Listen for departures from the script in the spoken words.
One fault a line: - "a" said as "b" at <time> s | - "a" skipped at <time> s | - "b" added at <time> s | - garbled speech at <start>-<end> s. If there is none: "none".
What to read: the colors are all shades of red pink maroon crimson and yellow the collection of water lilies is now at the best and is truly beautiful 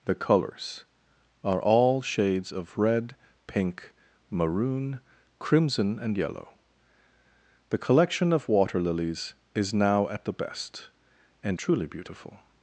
- "is" skipped at 11.6 s